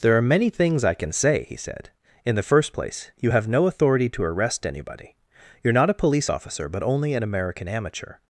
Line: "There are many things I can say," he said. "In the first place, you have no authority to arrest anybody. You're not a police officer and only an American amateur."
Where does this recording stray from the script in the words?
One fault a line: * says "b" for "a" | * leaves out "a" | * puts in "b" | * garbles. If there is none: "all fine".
* says "but" for "and"